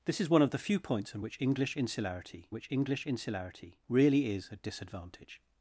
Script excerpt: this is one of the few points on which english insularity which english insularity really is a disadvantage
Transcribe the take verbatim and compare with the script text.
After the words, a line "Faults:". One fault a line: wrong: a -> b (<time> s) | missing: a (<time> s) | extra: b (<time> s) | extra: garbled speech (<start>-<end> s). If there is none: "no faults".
this is one of the few points on which english insularity which english insularity really is a disadvantage
Faults:
no faults